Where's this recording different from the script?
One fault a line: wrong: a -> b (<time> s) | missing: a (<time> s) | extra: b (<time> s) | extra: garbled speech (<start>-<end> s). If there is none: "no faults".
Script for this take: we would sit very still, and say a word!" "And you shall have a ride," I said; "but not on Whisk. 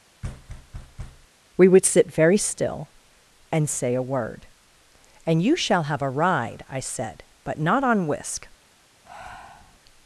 no faults